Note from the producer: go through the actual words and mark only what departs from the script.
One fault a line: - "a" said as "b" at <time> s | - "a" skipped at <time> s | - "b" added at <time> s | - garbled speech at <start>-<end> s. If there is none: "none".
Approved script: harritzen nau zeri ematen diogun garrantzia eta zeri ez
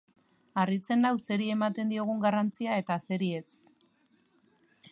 none